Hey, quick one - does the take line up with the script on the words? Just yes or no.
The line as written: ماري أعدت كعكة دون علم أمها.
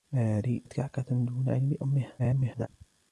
no